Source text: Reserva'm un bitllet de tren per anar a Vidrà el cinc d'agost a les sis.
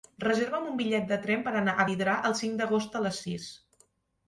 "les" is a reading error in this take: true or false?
false